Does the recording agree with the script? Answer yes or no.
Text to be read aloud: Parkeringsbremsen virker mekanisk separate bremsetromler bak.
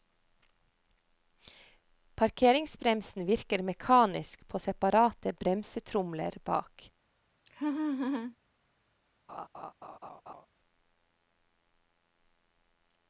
no